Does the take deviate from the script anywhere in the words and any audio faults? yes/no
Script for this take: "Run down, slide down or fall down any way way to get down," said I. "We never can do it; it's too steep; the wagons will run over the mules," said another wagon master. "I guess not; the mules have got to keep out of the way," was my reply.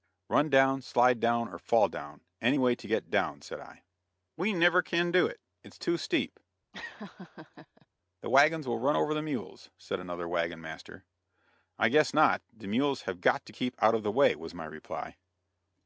yes